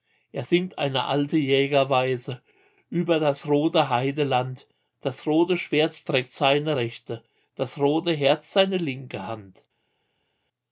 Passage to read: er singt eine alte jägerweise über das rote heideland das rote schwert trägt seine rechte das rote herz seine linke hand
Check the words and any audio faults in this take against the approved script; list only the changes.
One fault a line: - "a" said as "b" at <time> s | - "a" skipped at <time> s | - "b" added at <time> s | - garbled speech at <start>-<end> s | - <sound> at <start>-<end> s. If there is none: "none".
none